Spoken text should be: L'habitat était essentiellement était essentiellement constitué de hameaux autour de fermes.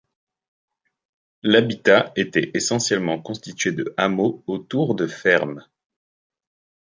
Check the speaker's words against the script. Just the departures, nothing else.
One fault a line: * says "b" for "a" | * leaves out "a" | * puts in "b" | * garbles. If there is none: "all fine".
* leaves out "était essentiellement"